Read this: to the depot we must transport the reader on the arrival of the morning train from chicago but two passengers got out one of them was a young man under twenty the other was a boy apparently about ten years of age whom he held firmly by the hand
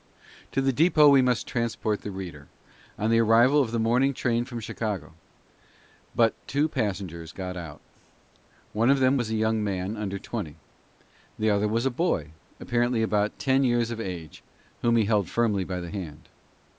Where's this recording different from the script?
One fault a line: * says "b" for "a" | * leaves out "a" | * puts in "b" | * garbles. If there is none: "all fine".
all fine